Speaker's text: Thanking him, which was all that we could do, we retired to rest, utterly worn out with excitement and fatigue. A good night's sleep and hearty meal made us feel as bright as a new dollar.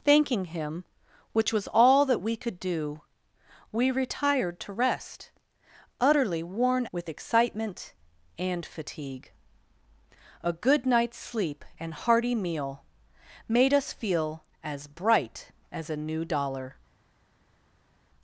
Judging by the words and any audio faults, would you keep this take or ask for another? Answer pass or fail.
fail